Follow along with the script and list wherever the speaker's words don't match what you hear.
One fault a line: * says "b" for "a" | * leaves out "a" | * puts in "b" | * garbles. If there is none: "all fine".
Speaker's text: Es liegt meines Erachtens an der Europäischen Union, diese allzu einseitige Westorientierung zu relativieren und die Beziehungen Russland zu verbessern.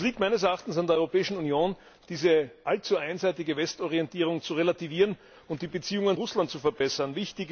all fine